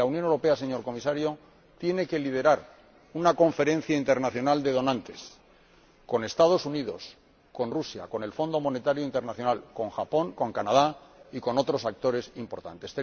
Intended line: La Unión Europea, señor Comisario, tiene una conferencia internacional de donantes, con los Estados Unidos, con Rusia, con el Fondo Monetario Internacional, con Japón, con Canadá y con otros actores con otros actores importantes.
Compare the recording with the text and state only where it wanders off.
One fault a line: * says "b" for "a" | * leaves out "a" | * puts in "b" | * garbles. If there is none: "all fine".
* puts in "que liderar"
* leaves out "con otros actores"